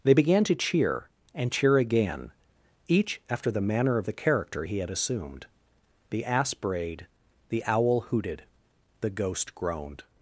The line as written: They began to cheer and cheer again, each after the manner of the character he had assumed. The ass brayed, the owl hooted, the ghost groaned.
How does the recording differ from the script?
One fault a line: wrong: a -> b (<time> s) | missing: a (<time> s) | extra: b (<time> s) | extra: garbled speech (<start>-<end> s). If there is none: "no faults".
no faults